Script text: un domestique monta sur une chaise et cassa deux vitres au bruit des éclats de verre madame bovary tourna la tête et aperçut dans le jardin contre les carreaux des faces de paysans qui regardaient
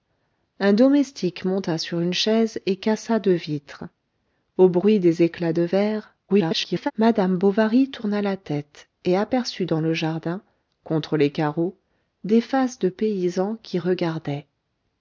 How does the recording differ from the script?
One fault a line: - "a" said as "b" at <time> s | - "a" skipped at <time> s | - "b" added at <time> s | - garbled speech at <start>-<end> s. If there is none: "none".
- garbled speech at 6.3-6.9 s